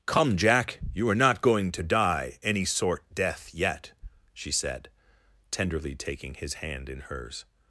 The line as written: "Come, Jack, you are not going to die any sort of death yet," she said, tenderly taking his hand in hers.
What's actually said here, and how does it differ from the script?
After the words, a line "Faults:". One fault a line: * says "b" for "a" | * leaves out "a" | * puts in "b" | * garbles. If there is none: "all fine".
"Come, Jack, you are not going to die any sort death yet," she said, tenderly taking his hand in hers.
Faults:
* leaves out "of"